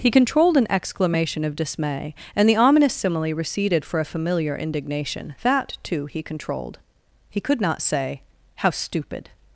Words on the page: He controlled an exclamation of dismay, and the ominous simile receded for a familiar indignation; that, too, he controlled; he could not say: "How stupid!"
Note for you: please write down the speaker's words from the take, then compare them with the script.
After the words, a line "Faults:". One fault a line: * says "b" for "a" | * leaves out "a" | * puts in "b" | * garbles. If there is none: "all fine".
He controlled an exclamation of dismay, and the ominous simile receded for a familiar indignation; that, too, he controlled; he could not say: "How stupid!"
Faults:
all fine